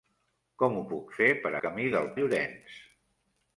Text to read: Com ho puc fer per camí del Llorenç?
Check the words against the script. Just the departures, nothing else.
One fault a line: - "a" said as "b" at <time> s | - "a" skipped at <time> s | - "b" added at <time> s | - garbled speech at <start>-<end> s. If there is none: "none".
none